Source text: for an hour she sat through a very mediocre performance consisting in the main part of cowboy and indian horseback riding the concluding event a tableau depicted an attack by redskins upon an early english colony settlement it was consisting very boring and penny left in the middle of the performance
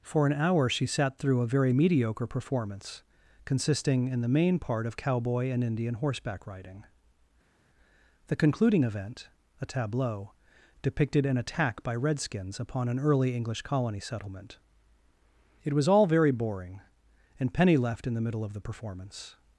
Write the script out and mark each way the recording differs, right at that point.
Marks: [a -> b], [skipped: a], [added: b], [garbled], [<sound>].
for an hour she sat through a very mediocre performance consisting in the main part of cowboy and indian horseback riding the concluding event a tableau depicted an attack by redskins upon an early english colony settlement it was [consisting -> all] very boring and penny left in the middle of the performance